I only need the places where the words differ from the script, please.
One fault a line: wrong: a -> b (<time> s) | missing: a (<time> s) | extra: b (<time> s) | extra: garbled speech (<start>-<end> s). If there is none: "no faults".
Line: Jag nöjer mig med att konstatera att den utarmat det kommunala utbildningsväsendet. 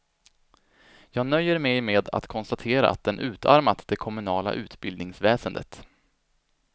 no faults